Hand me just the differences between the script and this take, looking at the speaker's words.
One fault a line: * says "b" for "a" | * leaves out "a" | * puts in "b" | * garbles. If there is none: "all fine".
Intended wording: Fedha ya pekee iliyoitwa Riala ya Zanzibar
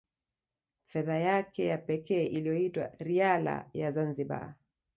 * puts in "yake"